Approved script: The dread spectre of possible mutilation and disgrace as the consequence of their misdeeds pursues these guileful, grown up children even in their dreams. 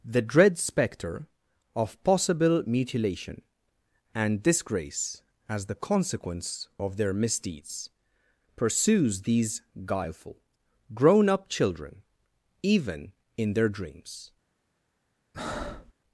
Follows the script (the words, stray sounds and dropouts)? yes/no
no